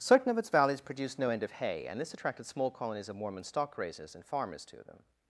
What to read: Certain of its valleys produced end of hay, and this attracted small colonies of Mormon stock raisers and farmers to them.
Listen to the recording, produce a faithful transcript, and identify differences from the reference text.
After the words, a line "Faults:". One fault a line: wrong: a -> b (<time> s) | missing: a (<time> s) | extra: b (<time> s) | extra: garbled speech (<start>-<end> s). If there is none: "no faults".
Certain of its valleys produced no end of hay, and this attracted small colonies of Mormon stock raisers and farmers to them.
Faults:
extra: no (1.2 s)